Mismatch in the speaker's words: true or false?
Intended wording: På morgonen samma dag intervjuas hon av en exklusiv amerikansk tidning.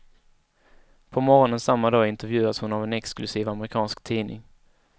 false